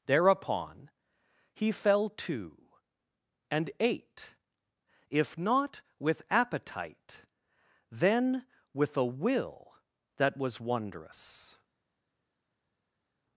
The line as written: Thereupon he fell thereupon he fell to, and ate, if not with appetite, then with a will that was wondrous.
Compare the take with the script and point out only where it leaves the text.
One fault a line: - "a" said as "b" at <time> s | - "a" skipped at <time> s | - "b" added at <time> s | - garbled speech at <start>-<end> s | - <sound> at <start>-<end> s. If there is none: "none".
- "thereupon he fell" skipped at 2.1 s